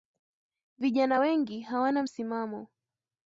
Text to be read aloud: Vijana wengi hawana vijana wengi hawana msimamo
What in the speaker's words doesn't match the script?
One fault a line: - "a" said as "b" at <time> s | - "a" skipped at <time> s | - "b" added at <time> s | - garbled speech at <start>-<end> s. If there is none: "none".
- "vijana wengi hawana" skipped at 2.0 s